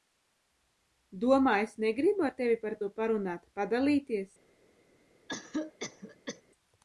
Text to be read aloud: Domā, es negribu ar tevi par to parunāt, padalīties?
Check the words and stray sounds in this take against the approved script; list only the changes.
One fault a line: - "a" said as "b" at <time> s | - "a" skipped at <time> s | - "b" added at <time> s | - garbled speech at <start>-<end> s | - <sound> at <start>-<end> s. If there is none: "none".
- cough at 5.3-6.4 s